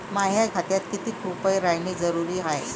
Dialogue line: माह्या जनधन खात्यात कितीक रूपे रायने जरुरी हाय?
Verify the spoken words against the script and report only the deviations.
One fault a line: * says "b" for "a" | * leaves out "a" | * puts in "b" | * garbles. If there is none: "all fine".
* leaves out "जनधन"